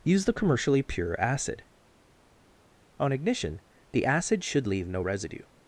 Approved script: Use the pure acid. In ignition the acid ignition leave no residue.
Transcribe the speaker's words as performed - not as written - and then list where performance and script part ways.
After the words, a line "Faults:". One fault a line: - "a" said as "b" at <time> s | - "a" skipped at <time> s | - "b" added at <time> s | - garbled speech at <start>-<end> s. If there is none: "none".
Use the commercially pure acid. On ignition the acid should leave no residue.
Faults:
- "commercially" added at 0.3 s
- "In" said as "On" at 3.0 s
- "ignition" said as "should" at 4.4 s